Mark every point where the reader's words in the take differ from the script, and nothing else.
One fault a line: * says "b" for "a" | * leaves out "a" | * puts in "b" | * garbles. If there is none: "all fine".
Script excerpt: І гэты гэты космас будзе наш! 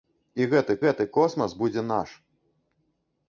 all fine